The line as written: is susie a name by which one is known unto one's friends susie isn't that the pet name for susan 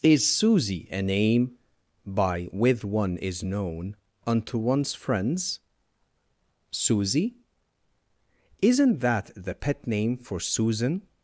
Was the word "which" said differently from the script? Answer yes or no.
yes